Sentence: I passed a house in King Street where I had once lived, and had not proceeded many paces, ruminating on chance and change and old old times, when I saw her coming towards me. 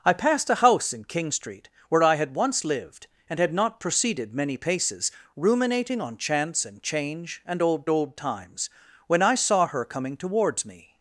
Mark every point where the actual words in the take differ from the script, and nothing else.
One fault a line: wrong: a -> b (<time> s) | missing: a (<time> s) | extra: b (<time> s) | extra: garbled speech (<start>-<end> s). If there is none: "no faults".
no faults